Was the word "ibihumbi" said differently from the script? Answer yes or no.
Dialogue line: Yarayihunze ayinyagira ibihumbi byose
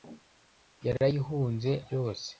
yes